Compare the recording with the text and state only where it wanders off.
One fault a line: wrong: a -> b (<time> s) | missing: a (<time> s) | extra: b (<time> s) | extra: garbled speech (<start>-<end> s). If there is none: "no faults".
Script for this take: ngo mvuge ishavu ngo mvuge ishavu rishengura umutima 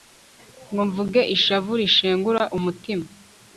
missing: ngo mvuge ishavu (1.7 s)